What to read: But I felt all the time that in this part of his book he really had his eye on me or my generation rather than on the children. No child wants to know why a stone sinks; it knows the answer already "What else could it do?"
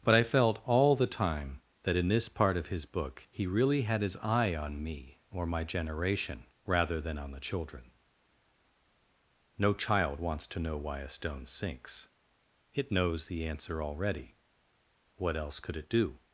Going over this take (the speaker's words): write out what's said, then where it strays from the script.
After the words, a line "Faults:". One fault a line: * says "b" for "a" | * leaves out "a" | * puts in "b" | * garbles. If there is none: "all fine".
But I felt all the time that in this part of his book he really had his eye on me or my generation rather than on the children. No child wants to know why a stone sinks; it knows the answer already "What else could it do?"
Faults:
all fine